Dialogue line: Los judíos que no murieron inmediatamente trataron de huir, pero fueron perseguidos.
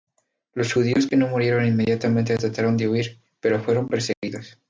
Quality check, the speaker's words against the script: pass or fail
pass